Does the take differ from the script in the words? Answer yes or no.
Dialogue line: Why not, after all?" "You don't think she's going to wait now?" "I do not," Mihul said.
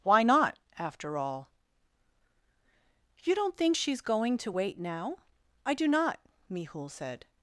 no